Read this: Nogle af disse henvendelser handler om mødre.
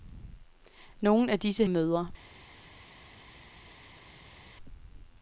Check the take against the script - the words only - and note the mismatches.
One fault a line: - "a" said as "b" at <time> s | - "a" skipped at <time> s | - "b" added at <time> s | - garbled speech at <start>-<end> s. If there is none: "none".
- "henvendelser handler om" skipped at 1.6 s